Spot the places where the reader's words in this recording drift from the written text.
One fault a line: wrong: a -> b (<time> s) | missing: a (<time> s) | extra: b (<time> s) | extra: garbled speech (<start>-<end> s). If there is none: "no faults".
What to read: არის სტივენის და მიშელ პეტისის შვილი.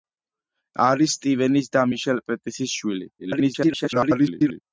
extra: garbled speech (3.2-4.6 s)